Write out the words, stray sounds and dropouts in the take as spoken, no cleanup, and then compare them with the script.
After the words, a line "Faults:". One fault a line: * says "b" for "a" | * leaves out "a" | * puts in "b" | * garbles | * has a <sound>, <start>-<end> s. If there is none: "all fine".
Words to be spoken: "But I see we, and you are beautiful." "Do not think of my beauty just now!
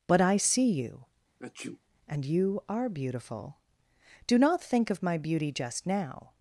"But I see you, and you are beautiful." "Do not think of my beauty just now!
Faults:
* says "you" for "we"
* has a sneeze, 1.4-1.8 s